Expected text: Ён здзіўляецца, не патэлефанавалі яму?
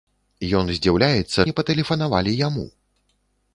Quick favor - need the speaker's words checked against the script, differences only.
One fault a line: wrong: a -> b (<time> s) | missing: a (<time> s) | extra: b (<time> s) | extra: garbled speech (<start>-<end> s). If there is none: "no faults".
no faults